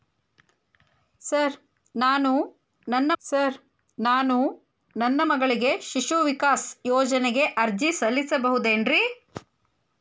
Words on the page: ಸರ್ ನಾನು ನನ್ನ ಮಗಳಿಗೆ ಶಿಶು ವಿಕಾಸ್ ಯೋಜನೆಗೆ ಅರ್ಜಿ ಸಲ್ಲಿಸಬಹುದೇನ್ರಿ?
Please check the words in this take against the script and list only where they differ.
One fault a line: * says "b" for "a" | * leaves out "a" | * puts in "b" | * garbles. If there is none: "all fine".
* puts in "ಸರ್ ನಾನು ನನ್ನ"